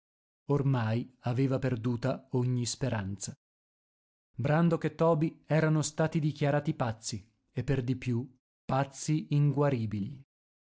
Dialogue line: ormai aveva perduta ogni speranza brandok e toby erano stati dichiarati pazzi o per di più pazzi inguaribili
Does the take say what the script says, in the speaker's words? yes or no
no